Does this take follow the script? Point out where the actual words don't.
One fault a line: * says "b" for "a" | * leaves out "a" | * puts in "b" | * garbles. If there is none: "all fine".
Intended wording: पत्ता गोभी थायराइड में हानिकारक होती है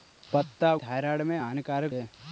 * leaves out "गोभी"
* leaves out "होती"